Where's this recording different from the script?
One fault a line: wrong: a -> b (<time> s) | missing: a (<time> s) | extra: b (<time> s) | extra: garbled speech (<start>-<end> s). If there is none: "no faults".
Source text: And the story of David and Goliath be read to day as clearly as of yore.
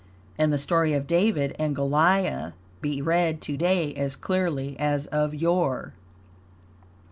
no faults